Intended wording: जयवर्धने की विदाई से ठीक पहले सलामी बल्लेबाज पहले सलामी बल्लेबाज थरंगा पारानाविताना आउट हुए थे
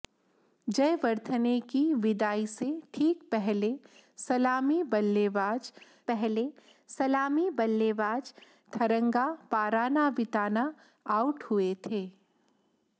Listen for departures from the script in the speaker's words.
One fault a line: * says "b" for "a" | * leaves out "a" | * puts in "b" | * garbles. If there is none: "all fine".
all fine